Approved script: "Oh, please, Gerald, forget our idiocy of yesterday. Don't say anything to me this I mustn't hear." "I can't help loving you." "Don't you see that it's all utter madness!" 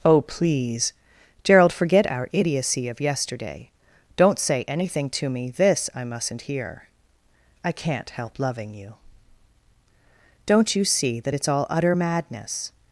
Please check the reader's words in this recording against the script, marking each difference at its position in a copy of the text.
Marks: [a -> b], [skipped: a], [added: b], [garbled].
"Oh, please, Gerald, forget our idiocy of yesterday. Don't say anything to me this I mustn't hear." "I can't help loving you." "Don't you see that it's all utter madness!"